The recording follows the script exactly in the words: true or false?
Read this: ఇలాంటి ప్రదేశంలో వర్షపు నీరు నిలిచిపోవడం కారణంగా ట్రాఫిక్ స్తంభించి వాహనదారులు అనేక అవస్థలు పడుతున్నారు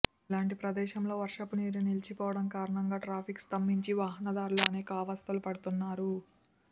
true